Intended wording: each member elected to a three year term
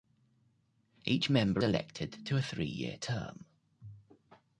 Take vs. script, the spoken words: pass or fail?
pass